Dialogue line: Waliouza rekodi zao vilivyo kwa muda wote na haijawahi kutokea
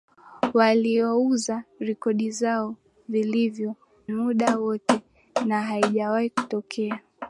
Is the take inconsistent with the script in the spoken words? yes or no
yes